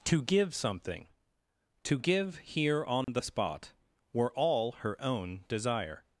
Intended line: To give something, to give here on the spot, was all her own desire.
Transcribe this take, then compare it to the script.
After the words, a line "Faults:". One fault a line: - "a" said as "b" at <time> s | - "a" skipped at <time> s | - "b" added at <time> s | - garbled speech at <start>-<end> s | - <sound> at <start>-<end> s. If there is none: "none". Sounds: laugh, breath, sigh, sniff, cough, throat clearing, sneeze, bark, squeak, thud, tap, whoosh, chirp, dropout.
To give something, to give here on the spot, were all her own desire.
Faults:
- dropout at 3.0-3.1 s
- "was" said as "were" at 4.1 s